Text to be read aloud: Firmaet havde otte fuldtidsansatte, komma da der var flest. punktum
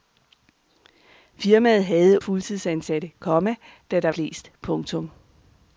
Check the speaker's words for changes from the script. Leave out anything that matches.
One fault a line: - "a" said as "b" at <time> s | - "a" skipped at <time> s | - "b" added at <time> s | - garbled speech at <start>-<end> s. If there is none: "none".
- "otte" skipped at 2.2 s
- "var" skipped at 4.1 s